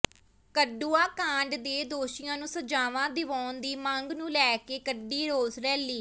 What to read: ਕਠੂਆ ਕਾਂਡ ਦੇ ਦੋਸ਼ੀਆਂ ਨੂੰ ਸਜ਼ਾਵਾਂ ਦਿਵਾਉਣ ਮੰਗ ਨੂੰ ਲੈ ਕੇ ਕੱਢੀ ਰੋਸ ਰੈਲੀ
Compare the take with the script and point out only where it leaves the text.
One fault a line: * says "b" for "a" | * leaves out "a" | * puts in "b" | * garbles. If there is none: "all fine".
* puts in "ਦੀ"